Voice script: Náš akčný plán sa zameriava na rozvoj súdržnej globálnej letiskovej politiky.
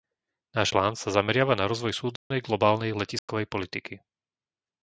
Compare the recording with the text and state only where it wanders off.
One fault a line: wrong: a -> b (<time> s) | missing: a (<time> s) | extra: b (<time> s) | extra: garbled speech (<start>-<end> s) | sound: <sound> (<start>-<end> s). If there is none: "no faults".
missing: akčný (0.7 s)
sound: dropout (2.2-2.3 s)
sound: dropout (3.2-3.3 s)